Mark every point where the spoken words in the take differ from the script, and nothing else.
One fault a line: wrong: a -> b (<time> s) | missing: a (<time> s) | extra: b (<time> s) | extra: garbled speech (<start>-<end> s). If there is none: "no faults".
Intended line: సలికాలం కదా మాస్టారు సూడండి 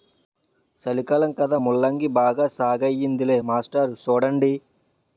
extra: ముల్లంగి బాగా సాగయ్యిందిలే (1.6 s)